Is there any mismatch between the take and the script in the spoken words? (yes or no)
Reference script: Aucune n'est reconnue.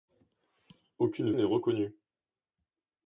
no